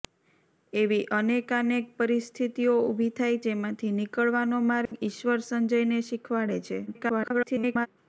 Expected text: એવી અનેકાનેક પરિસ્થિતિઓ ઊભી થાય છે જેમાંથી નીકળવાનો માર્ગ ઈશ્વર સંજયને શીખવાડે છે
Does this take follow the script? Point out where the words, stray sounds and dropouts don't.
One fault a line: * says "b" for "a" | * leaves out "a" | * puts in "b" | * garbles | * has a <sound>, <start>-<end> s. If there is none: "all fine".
* leaves out "છે"
* has a dropout, 4.9-4.9 s
* garbles